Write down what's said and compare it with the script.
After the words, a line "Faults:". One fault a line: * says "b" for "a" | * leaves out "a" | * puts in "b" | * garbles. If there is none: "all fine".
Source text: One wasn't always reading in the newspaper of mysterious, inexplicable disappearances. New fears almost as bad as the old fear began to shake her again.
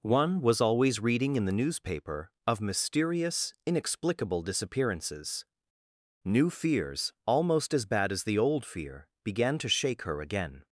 One was always reading in the newspaper of mysterious, inexplicable disappearances. New fears almost as bad as the old fear began to shake her again.
Faults:
* says "was" for "wasn't"